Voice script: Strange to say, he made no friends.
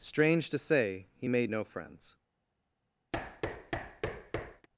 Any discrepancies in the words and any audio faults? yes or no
yes